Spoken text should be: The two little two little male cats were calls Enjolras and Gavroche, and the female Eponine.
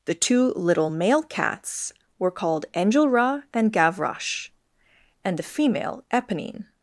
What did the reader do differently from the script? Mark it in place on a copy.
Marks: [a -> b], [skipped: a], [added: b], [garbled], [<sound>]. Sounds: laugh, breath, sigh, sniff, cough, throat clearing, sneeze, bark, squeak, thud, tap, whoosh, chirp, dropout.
The two little [skipped: two little] male cats were [calls -> called] Enjolras and Gavroche, and the female Eponine.